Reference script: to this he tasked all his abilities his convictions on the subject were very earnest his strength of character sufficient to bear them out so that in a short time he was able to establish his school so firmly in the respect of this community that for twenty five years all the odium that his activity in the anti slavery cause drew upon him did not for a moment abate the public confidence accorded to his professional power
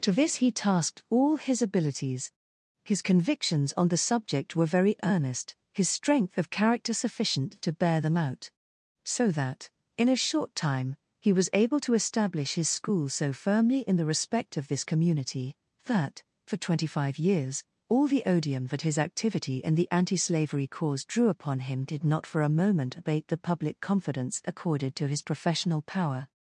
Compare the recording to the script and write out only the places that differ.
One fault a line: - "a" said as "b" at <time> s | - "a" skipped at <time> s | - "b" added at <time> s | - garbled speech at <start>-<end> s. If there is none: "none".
none